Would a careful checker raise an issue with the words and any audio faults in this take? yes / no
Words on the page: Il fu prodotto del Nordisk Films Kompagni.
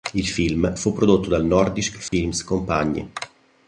yes